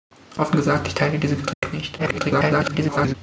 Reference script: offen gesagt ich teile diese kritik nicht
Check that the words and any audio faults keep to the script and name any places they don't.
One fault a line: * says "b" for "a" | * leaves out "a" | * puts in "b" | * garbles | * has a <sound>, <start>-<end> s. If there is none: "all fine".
* has a dropout, 1.5-1.6 s
* garbles